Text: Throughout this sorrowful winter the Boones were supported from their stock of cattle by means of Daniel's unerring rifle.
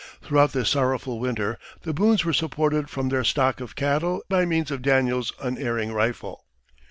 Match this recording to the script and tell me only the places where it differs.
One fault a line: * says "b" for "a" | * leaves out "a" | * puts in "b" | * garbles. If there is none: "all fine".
all fine